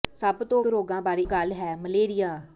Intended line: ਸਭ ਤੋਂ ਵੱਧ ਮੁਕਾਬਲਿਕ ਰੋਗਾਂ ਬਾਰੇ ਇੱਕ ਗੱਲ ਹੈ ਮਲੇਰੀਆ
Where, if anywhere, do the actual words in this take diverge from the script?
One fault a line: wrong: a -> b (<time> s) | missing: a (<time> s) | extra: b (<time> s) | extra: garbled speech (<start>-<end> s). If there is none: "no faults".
missing: ਵੱਧ ਮੁਕਾਬਲਿਕ (0.6 s)
missing: ਇੱਕ (1.2 s)